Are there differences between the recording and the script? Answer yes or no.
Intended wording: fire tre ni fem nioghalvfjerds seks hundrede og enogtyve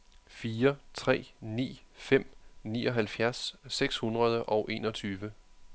no